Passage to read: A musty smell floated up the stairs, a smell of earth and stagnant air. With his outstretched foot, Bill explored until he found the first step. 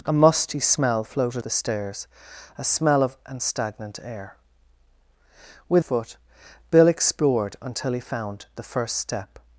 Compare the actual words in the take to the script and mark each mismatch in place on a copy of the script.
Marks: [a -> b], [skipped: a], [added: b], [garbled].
A musty smell floated [skipped: up] the stairs, a smell of [skipped: earth] and stagnant air. With [skipped: his outstretched] foot, Bill explored until he found the first step.